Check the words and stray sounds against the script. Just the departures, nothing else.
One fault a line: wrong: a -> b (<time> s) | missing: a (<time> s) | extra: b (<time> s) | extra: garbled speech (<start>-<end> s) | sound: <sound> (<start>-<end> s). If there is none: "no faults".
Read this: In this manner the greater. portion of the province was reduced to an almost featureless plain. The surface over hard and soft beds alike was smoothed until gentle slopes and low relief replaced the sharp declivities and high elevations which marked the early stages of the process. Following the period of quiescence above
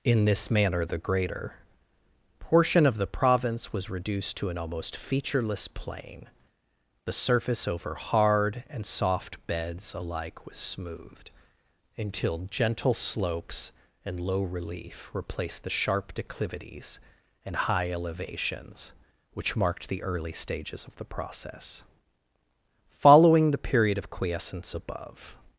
no faults